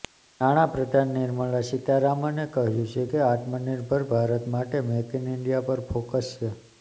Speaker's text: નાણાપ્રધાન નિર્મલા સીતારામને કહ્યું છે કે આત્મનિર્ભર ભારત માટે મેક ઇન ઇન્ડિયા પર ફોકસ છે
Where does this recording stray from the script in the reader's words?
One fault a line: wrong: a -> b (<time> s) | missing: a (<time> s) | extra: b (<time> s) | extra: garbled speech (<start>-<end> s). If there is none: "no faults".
no faults